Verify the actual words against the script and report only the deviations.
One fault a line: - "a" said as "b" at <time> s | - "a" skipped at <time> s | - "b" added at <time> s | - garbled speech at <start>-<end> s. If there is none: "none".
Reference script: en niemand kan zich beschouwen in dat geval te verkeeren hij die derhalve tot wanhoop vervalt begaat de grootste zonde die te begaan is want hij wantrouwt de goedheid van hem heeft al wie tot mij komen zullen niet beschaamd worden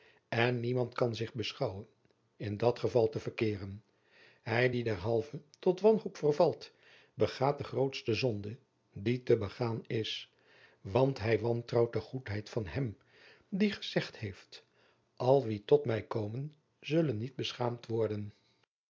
- "die gezegd" added at 13.5 s